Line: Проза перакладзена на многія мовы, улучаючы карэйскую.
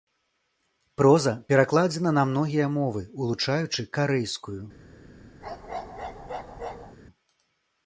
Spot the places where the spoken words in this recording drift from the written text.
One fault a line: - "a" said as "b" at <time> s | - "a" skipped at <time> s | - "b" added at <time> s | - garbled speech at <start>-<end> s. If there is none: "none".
none